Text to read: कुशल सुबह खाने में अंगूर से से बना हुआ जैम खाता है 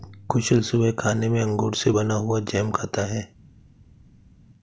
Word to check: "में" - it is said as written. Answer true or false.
true